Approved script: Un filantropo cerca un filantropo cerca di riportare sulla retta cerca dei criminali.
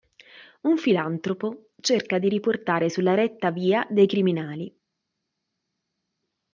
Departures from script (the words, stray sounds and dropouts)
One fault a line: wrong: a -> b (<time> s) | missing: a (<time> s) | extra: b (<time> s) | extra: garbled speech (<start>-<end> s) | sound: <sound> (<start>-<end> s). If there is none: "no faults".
missing: un filantropo cerca (2.2 s)
wrong: cerca -> via (3.5 s)